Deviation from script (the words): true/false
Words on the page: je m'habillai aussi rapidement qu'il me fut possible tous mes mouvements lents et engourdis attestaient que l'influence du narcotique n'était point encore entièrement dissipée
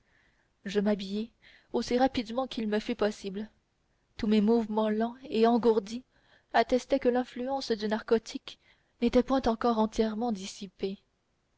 false